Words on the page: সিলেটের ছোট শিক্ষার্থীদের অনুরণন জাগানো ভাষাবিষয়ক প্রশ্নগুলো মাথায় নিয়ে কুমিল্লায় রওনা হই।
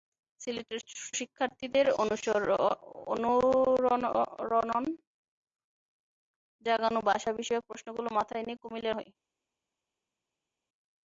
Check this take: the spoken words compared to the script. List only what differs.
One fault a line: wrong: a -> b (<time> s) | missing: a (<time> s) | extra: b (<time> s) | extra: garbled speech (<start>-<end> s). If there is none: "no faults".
missing: ছোট (0.8 s)
missing: রওনা (8.9 s)